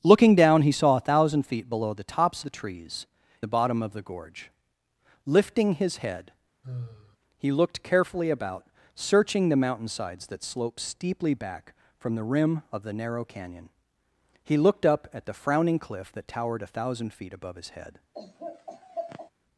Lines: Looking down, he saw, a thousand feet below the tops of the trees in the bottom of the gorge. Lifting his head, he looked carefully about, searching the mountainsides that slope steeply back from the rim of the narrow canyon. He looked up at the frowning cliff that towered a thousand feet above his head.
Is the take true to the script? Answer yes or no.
no